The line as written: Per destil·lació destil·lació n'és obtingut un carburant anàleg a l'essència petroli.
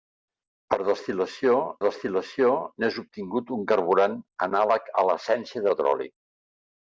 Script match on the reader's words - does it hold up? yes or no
yes